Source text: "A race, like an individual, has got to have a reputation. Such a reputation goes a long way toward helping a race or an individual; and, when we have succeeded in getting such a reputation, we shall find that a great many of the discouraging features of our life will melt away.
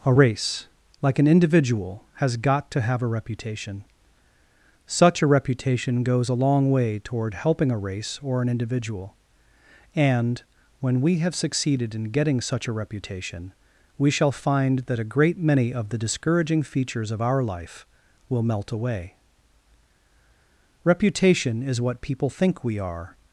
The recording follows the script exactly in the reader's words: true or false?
false